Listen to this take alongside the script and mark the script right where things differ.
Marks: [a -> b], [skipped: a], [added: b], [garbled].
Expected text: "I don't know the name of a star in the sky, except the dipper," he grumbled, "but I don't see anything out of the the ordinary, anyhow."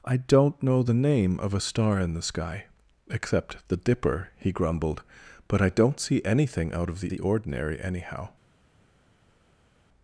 "I don't know the name of a star in the sky, except the dipper," he grumbled, "but I don't see anything out of the the ordinary, anyhow."